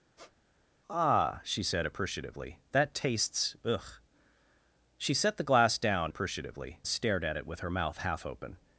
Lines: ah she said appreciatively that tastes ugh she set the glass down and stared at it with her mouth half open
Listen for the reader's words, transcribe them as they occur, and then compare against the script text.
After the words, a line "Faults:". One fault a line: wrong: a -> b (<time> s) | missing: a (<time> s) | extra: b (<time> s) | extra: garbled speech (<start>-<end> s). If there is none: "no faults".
ah she said appreciatively that tastes ugh she set the glass down appreciatively stared at it with her mouth half open
Faults:
wrong: and -> appreciatively (6.1 s)